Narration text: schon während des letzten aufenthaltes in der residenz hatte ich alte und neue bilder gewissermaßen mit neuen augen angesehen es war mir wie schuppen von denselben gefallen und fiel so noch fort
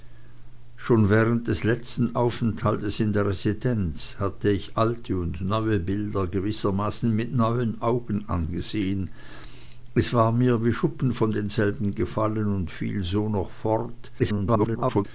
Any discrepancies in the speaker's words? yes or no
yes